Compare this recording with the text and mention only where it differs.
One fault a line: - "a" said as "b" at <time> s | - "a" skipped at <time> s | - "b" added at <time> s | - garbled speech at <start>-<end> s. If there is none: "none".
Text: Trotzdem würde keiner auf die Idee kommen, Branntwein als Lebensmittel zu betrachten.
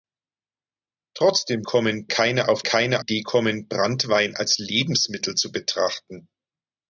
- "würde" said as "kommen" at 1.6 s
- "die" said as "keiner" at 2.6 s